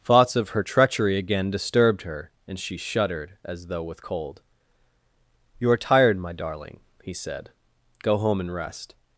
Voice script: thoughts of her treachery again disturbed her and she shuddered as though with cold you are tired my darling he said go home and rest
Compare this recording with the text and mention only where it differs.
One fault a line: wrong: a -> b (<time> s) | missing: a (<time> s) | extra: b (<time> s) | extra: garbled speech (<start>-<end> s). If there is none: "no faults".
no faults